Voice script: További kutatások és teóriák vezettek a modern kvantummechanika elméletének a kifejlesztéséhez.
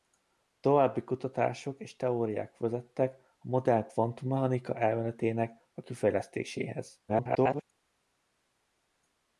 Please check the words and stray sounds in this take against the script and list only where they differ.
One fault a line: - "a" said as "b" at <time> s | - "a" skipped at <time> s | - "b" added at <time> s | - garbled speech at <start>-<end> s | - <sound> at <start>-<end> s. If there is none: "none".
- garbled speech at 7.1-7.6 s